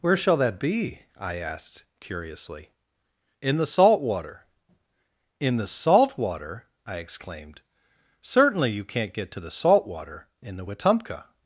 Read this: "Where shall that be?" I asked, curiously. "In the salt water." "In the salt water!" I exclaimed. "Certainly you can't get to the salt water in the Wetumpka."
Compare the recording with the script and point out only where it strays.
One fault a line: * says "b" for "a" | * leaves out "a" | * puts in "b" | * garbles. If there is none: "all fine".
all fine